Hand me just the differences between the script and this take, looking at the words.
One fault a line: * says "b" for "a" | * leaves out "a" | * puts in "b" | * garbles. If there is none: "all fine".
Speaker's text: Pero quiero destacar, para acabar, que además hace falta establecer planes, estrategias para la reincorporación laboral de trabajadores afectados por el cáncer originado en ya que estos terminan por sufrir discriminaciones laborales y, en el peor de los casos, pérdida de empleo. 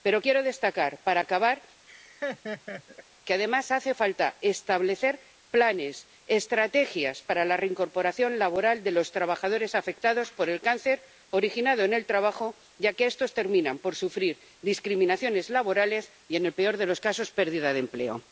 * puts in "los"
* puts in "el trabajo"